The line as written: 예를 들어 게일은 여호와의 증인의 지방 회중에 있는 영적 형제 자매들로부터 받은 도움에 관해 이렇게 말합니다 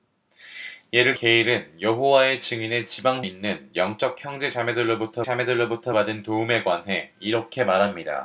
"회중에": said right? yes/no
no